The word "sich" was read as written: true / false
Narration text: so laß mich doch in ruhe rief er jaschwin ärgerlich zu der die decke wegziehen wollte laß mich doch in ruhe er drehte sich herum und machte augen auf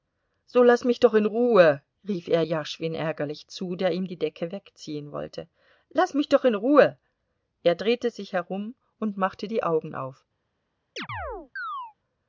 true